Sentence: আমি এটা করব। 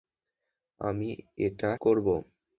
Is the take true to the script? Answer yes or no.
yes